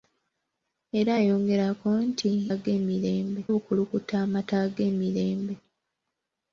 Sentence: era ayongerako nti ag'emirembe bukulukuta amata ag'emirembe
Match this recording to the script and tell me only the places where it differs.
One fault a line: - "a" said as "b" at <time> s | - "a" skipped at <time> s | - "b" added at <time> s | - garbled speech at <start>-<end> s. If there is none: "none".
none